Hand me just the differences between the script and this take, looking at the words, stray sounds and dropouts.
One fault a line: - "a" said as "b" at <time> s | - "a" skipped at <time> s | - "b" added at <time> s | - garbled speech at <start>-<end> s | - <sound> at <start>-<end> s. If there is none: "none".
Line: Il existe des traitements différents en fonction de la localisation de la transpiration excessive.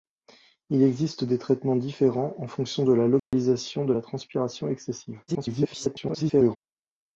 - dropout at 3.2-3.3 s
- garbled speech at 5.3-6.6 s